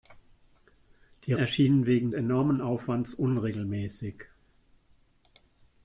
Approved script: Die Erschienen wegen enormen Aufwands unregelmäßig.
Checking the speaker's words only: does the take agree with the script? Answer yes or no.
yes